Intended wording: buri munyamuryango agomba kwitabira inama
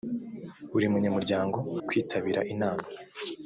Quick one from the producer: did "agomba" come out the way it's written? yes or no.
no